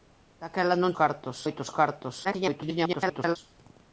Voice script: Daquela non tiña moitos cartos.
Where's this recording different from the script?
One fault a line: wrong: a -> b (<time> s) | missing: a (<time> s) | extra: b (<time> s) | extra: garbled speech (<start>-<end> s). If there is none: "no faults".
wrong: tiña -> cartos (1.0 s)
extra: garbled speech (2.2-3.4 s)